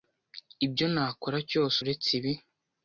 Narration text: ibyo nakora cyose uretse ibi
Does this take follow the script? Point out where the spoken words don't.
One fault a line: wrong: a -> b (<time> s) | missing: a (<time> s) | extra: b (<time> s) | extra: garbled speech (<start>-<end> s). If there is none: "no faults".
no faults